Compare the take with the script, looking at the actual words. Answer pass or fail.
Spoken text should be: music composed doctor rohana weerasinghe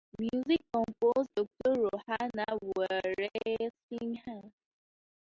pass